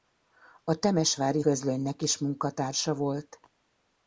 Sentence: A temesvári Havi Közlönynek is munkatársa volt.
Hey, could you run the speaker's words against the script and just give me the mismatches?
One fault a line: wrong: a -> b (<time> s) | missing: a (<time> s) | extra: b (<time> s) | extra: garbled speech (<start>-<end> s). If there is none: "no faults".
missing: Havi (1.4 s)